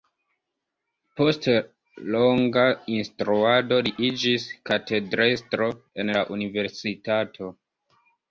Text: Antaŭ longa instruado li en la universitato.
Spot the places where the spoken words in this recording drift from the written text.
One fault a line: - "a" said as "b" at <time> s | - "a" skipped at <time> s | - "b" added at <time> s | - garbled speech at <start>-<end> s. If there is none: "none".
- "Antaŭ" said as "Post" at 1.2 s
- "iĝis katedrestro" added at 4.1 s